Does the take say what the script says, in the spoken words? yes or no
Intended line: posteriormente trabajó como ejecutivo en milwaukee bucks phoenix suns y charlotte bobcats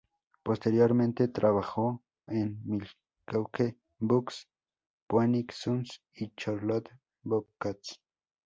no